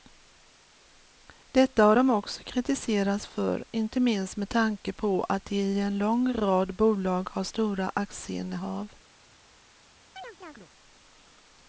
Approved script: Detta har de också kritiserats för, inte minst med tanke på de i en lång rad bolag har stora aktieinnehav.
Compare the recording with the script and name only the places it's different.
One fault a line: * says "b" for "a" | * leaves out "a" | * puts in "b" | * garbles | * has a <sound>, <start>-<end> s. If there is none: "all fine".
* puts in "att"
* has a chirp, 10.2-10.7 s